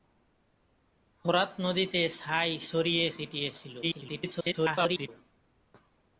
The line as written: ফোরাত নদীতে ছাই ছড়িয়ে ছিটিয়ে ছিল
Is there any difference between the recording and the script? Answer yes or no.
yes